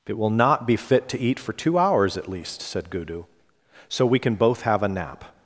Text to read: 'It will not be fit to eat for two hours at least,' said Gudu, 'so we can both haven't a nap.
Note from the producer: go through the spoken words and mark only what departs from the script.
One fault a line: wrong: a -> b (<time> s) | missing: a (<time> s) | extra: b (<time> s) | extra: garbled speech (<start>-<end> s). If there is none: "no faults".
wrong: haven't -> have (4.6 s)